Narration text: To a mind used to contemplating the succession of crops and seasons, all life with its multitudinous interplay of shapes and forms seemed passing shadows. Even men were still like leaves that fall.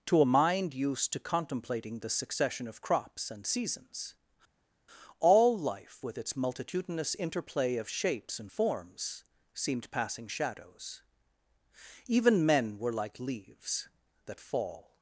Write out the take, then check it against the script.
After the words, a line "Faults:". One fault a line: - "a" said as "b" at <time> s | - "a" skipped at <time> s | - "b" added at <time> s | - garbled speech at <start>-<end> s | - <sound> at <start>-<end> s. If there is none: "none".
To a mind used to contemplating the succession of crops and seasons, all life with its multitudinous interplay of shapes and forms seemed passing shadows. Even men were like leaves that fall.
Faults:
- "still" skipped at 12.9 s